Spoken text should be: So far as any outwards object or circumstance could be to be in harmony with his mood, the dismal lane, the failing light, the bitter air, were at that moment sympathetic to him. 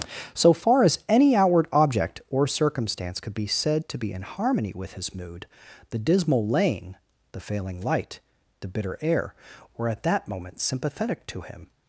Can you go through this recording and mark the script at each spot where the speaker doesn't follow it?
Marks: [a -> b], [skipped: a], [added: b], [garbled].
So far as any [outwards -> outward] object or circumstance could be [added: said] to be in harmony with his mood, the dismal lane, the failing light, the bitter air, were at that moment sympathetic to him.